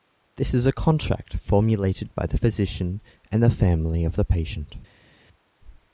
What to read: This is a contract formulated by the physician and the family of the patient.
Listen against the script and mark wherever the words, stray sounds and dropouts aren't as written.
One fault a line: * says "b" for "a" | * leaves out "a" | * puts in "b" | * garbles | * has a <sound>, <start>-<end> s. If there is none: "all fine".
all fine